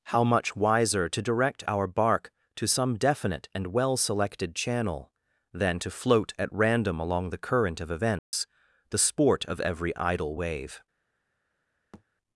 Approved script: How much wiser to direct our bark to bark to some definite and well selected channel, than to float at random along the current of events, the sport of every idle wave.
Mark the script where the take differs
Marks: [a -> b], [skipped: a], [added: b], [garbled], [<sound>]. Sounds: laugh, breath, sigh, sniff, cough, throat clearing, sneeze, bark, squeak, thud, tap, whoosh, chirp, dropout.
How much wiser to direct our bark to [skipped: bark to] some definite and well selected channel, than to float at random along the current of events, [dropout] the sport of every idle wave. [thud]